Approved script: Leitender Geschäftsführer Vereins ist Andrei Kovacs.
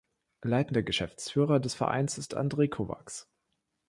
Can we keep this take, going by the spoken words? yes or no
no